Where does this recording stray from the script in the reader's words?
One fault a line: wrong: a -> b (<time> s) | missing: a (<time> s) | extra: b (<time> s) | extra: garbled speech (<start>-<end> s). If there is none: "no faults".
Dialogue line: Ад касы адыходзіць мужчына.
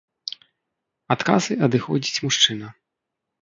no faults